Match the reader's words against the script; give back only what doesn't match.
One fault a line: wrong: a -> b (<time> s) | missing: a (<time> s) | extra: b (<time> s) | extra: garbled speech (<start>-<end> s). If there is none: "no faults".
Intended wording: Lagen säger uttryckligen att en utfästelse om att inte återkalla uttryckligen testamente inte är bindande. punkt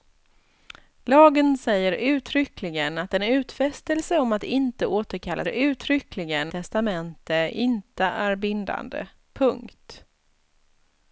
no faults